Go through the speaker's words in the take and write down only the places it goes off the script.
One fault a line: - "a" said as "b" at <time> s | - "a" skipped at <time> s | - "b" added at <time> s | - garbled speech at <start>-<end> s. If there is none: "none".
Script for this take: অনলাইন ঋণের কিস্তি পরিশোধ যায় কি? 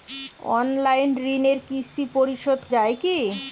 none